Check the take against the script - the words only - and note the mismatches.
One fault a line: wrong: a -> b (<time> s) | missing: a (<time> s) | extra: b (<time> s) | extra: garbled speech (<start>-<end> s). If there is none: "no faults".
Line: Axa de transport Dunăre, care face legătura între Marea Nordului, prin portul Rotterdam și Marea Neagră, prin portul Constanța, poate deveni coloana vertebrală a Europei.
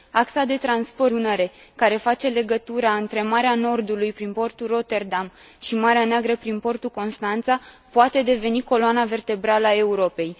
no faults